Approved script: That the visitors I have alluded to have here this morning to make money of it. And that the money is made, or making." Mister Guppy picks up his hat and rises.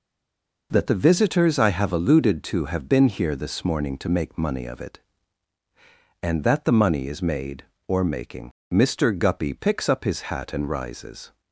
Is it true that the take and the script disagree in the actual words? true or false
true